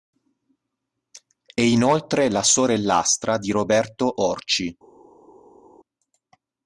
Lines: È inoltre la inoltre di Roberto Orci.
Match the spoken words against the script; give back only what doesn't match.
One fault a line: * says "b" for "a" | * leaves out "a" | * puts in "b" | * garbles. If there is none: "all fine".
* says "sorellastra" for "inoltre"